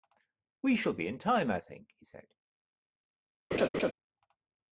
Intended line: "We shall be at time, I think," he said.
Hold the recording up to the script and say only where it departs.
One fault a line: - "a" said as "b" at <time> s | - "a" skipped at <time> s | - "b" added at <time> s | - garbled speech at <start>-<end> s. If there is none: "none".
- "at" said as "in" at 1.1 s